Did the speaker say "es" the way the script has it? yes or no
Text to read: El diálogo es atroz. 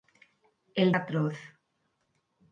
no